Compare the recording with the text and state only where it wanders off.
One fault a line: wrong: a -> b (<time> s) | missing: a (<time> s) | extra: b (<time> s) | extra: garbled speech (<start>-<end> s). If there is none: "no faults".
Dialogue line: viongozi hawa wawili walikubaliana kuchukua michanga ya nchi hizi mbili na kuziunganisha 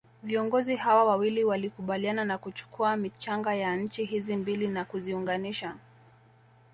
extra: na (2.2 s)